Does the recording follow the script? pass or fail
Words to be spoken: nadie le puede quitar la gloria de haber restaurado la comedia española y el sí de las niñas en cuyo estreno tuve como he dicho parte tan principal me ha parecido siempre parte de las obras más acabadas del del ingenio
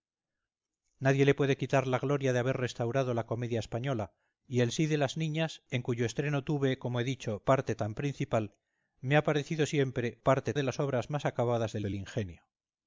pass